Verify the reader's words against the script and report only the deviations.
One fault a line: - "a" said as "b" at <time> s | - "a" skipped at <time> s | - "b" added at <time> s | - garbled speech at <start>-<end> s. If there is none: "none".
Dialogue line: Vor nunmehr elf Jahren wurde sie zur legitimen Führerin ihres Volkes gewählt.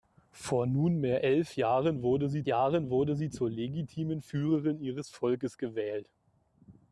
- "Jahren wurde sie" added at 2.5 s